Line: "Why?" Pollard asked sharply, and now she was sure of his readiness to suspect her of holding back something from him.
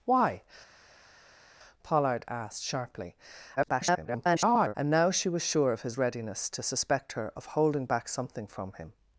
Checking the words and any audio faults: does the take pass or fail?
fail